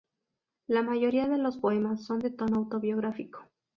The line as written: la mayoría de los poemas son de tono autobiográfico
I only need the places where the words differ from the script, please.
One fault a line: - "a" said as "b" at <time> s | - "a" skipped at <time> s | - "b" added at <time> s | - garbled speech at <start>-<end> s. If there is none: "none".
none